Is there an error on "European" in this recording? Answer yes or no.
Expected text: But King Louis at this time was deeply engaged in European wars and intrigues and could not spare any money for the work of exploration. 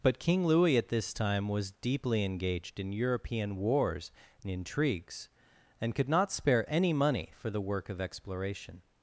no